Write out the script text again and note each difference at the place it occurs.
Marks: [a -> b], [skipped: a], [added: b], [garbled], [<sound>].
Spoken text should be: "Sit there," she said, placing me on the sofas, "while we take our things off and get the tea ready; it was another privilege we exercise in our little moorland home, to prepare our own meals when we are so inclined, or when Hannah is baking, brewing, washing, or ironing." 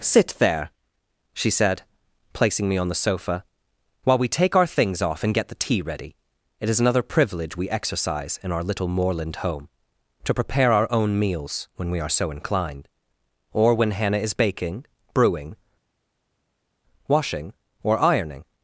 "Sit there," she said, placing me on the [sofas, -> sofa] "while we take our things off and get the tea ready; it [was -> is] another privilege we exercise in our little moorland home, to prepare our own meals when we are so inclined, or when Hannah is baking, brewing, washing, or ironing."